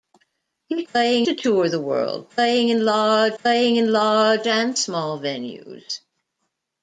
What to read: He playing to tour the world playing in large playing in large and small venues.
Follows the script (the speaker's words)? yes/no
yes